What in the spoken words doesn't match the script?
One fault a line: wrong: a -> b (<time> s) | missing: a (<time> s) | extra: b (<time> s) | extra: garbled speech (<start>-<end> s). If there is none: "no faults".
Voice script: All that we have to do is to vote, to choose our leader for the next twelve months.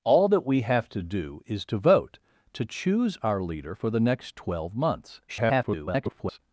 extra: garbled speech (5.3-6.4 s)